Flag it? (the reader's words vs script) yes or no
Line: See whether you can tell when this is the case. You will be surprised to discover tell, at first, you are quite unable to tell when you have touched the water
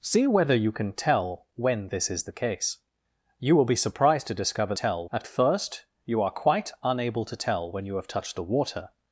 no